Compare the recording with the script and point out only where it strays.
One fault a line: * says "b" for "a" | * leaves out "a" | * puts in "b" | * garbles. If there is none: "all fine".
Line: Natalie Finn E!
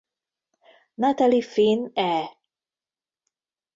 all fine